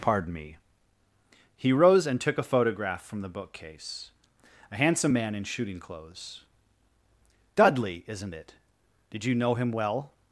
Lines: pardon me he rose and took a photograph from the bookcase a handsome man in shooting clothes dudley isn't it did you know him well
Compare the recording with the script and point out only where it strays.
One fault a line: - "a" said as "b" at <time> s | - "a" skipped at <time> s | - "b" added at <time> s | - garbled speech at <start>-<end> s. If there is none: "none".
none